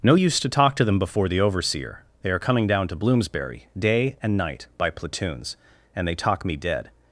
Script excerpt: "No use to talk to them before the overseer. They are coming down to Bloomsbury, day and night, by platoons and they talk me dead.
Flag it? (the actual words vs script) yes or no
no